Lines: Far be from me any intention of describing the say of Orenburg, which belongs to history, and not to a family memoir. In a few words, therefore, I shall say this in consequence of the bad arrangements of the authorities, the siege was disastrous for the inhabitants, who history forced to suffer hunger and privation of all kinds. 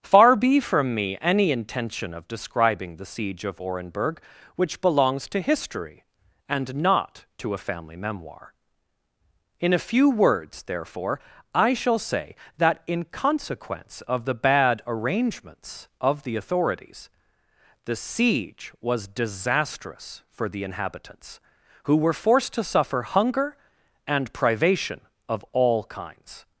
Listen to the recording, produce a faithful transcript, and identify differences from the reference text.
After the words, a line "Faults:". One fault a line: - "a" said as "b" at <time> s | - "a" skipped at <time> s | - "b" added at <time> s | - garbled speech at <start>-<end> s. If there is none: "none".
Far be from me any intention of describing the siege of Orenburg, which belongs to history, and not to a family memoir. In a few words, therefore, I shall say that in consequence of the bad arrangements of the authorities, the siege was disastrous for the inhabitants, who were forced to suffer hunger and privation of all kinds.
Faults:
- "say" said as "siege" at 3.0 s
- "this" said as "that" at 12.6 s
- "history" said as "were" at 21.9 s